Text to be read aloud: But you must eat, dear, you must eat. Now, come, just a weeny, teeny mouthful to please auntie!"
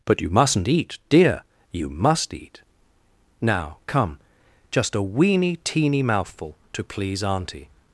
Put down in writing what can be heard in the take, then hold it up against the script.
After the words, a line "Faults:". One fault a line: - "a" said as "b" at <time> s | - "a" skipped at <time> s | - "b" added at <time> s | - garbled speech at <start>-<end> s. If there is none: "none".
But you mustn't eat, dear, you must eat. Now, come, just a weeny, teeny mouthful to please auntie!"
Faults:
- "must" said as "mustn't" at 0.3 s